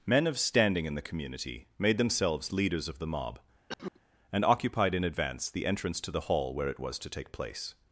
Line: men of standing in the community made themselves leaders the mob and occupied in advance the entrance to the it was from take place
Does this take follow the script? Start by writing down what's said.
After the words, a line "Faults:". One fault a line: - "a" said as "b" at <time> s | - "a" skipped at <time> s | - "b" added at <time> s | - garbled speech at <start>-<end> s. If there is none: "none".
men of standing in the community made themselves leaders of the mob and occupied in advance the entrance to the hall where it was to take place
Faults:
- "of" added at 2.9 s
- "hall where" added at 6.2 s
- "from" said as "to" at 7.0 s